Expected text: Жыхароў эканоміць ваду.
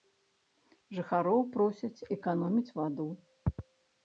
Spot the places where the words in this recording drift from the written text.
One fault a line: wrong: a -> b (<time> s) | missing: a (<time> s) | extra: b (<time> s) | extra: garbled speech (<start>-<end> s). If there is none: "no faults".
extra: просяць (1.6 s)